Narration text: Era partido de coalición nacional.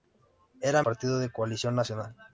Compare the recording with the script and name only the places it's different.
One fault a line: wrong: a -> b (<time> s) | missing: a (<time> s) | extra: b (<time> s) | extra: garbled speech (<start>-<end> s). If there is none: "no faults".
no faults